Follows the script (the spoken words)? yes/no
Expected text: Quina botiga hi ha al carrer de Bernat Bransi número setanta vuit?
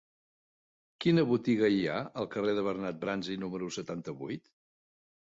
yes